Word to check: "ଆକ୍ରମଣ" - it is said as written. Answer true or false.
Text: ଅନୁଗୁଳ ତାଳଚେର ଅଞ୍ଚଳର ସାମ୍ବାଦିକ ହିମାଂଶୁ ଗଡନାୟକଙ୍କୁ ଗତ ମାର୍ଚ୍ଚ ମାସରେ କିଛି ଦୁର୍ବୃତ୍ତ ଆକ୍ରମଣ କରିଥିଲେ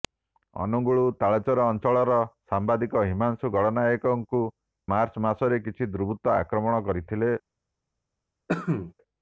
true